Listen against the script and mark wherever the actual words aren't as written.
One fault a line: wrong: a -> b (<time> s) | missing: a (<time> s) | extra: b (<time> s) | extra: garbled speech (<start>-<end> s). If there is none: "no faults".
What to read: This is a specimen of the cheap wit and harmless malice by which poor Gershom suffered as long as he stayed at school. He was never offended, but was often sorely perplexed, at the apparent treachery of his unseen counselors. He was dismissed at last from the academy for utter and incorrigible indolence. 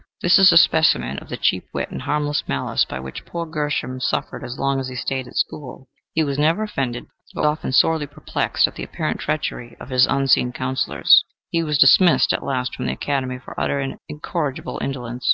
missing: was (7.5 s)